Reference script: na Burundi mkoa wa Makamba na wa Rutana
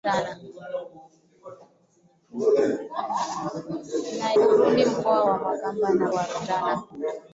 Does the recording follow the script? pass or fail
pass